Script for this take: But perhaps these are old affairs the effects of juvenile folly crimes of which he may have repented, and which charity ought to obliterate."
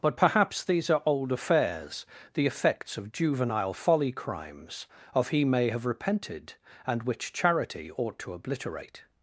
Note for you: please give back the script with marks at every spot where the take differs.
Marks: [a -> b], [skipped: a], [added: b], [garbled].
But perhaps these are old affairs the effects of juvenile folly crimes of [skipped: which] he may have repented, and which charity ought to obliterate."